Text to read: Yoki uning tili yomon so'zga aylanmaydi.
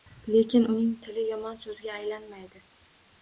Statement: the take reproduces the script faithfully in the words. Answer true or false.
false